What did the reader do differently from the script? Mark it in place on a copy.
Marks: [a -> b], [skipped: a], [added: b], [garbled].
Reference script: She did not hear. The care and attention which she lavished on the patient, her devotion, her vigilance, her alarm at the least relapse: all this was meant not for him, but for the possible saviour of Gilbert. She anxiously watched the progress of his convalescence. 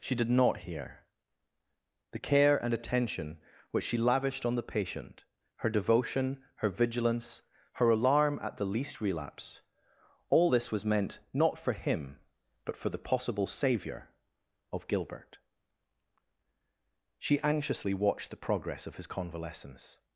She did not hear. The care and attention which she lavished on the patient, her devotion, her vigilance, her alarm at the least relapse: all this was meant not for him, but for the possible saviour of Gilbert. She anxiously watched the progress of his convalescence.